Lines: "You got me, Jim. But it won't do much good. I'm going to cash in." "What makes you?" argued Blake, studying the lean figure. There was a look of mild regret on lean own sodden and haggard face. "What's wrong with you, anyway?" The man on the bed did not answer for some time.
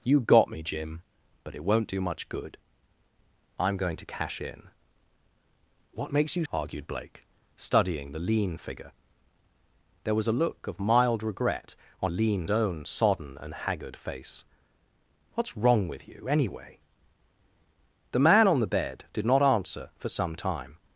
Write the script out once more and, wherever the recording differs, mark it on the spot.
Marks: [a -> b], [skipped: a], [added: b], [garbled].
"You got me, Jim. But it won't do much good. I'm going to cash in." "What makes you?" argued Blake, studying the lean figure. There was a look of mild regret on lean own sodden and haggard face. "What's wrong with you, anyway?" The man on the bed did not answer for some time.